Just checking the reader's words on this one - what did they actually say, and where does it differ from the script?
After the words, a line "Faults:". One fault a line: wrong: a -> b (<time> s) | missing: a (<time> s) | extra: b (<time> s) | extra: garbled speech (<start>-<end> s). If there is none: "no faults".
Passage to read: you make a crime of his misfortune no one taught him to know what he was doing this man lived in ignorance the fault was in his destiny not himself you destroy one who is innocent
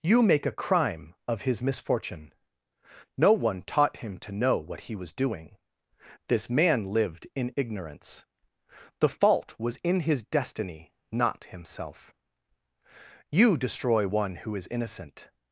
you make a crime of his misfortune no one taught him to know what he was doing this man lived in ignorance the fault was in his destiny not himself you destroy one who is innocent
Faults:
no faults